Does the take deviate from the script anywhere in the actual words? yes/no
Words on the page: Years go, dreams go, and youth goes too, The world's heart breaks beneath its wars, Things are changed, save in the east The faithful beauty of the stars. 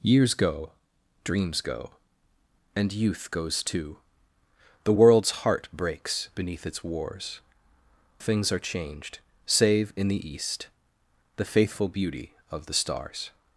no